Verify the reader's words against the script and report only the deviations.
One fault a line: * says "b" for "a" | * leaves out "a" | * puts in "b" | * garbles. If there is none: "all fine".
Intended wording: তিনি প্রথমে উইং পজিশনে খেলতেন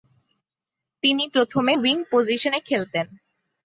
all fine